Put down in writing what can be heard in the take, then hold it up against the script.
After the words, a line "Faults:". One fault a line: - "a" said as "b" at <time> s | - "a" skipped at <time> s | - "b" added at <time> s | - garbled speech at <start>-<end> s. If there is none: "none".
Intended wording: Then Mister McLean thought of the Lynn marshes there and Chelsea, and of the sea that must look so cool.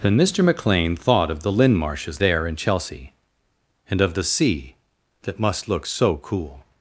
Then Mister McLean thought of the Lynn marshes there and Chelsea, and of the sea that must look so cool.
Faults:
none